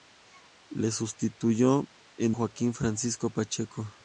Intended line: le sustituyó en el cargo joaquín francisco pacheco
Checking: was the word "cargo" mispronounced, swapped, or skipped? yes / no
yes